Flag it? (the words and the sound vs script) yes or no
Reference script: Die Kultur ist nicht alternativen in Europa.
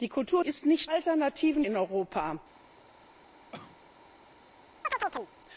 yes